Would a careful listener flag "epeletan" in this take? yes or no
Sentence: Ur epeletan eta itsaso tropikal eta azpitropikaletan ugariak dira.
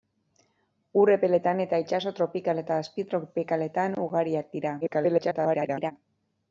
no